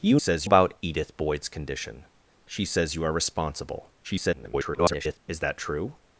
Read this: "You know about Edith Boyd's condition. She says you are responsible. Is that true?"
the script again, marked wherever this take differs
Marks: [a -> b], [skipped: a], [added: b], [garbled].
"You [know -> says] about Edith Boyd's condition. She says you are responsible. [garbled] Is that true?"